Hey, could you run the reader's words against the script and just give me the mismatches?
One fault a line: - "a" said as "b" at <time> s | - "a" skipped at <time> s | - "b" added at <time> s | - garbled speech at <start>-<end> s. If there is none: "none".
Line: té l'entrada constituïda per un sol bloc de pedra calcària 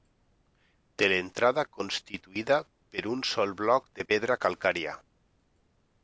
none